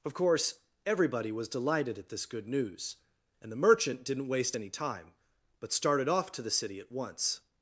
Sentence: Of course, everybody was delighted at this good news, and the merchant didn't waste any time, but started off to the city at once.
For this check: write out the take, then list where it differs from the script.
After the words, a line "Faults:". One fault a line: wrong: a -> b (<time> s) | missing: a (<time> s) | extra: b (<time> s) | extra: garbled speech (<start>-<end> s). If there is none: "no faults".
Of course, everybody was delighted at this good news, and the merchant didn't waste any time, but started off to the city at once.
Faults:
no faults